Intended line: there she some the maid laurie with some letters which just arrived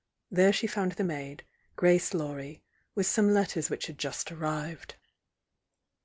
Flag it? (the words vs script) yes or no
yes